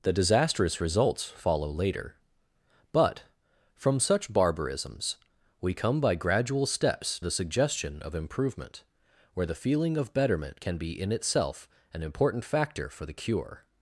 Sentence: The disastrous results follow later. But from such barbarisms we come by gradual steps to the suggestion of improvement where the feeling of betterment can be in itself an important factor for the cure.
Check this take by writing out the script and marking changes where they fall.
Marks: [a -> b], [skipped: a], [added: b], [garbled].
The disastrous results follow later. But from such barbarisms we come by gradual steps [skipped: to] the suggestion of improvement where the feeling of betterment can be in itself an important factor for the cure.